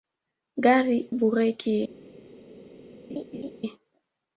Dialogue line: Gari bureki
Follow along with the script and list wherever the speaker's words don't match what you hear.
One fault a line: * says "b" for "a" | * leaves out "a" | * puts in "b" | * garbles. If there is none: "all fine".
all fine